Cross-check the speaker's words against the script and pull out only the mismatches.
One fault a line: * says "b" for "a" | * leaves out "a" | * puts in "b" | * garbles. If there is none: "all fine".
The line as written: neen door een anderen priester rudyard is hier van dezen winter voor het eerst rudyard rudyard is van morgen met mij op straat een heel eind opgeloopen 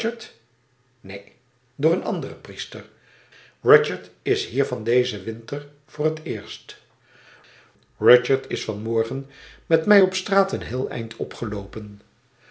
* leaves out "rudyard"